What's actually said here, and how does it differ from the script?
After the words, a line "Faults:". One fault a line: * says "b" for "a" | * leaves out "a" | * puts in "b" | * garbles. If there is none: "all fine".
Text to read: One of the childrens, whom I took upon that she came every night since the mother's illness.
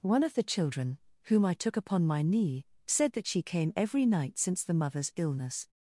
One of the children, whom I took upon my knee, said that she came every night since the mother's illness.
Faults:
* says "children" for "childrens"
* puts in "my knee said"